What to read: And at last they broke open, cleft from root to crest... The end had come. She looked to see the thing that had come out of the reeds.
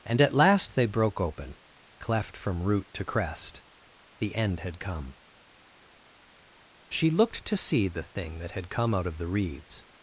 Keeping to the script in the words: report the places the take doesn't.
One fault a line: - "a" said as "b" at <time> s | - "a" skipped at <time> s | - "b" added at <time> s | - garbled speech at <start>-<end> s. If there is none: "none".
none